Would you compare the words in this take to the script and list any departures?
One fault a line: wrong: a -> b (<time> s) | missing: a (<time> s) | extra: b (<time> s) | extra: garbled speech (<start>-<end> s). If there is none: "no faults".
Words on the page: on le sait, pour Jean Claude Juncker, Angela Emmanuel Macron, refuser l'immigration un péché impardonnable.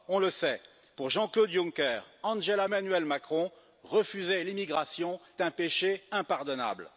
no faults